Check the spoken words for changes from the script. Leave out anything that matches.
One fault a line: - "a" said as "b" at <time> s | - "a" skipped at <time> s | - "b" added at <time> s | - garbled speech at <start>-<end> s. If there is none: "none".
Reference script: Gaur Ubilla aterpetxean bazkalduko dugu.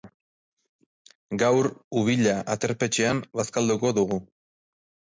none